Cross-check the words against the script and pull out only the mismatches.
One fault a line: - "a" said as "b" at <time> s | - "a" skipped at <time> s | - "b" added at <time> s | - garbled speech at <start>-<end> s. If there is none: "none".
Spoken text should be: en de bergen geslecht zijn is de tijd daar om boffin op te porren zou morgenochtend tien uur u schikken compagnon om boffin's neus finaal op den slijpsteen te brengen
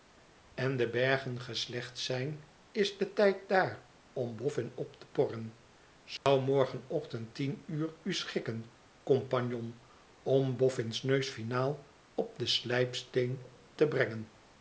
none